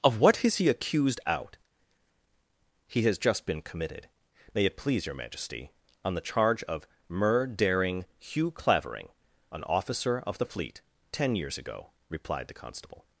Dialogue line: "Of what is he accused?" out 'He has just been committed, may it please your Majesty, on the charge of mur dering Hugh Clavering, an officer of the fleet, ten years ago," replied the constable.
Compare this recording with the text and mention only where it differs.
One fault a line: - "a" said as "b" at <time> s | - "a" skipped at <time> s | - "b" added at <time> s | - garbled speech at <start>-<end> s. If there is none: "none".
none